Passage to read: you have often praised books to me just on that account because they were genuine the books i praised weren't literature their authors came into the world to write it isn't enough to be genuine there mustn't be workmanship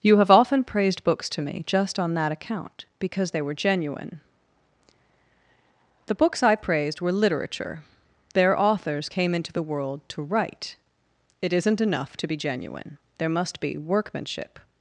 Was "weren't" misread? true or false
true